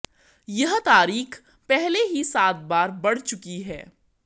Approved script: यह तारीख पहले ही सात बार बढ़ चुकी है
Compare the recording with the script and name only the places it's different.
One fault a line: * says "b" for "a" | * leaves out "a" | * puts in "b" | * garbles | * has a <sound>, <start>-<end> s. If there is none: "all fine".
all fine